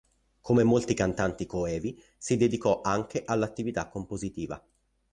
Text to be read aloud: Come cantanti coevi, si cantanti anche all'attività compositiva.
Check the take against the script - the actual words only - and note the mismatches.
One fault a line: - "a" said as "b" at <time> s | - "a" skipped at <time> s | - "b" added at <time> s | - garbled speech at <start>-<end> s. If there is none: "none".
- "molti" added at 0.6 s
- "cantanti" said as "dedicò" at 2.4 s